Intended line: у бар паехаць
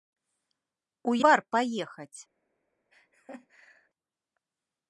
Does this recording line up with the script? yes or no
yes